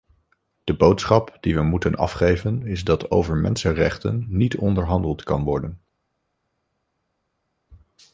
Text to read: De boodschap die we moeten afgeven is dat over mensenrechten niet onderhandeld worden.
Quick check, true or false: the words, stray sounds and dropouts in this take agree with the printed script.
false